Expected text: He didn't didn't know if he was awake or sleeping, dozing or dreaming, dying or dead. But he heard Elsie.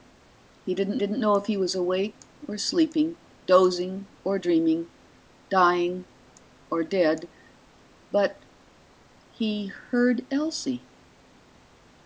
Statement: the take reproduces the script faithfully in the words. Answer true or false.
true